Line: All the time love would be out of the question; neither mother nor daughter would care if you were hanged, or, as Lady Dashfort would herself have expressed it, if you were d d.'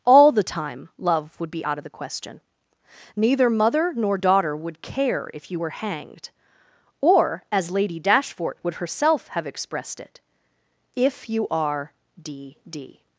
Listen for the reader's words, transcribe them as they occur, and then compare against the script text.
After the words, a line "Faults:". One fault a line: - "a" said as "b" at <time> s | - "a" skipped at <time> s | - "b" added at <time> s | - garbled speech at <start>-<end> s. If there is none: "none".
All the time love would be out of the question; neither mother nor daughter would care if you were hanged, or, as Lady Dashfort would herself have expressed it, if you are d d.'
Faults:
- "were" said as "are" at 11.5 s